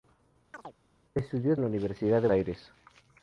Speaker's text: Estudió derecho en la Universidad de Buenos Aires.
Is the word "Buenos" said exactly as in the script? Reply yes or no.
no